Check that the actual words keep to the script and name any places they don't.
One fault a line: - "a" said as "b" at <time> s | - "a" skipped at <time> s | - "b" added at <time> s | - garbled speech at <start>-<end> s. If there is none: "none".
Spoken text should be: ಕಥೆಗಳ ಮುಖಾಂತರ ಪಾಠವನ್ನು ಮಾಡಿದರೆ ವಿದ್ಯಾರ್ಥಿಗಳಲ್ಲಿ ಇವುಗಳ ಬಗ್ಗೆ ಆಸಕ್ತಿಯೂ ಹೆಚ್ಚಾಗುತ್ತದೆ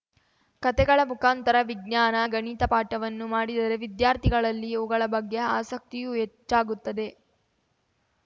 - "ವಿಜ್ಞಾನ ಗಣಿತ" added at 1.6 s